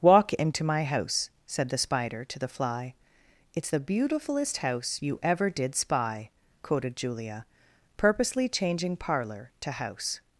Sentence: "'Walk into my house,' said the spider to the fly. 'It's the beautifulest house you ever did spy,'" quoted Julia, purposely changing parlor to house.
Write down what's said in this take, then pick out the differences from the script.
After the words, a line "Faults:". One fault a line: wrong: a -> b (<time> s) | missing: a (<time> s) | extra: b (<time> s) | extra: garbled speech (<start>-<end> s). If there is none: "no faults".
"'Walk into my house,' said the spider to the fly. 'It's the beautifulest house you ever did spy,'" quoted Julia, purposely changing parlor to house.
Faults:
no faults